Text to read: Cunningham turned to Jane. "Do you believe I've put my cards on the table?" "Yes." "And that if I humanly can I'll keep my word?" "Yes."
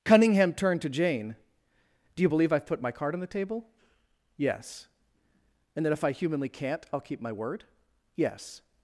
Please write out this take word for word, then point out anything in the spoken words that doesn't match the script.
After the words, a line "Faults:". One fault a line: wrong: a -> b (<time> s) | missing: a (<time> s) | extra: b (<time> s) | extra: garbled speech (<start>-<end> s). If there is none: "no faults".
Cunningham turned to Jane. "Do you believe I've put my card on the table?" "Yes." "And that if I humanly can't I'll keep my word?" "Yes."
Faults:
wrong: cards -> card (2.9 s)
wrong: can -> can't (6.5 s)